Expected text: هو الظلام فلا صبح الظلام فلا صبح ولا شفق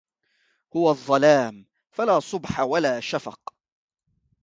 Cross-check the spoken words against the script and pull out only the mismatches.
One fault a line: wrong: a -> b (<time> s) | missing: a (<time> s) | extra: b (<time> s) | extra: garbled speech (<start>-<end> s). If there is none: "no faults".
missing: الظلام فلا صبح (2.6 s)